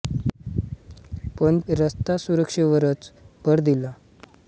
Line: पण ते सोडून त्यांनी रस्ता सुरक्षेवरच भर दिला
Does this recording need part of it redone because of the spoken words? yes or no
yes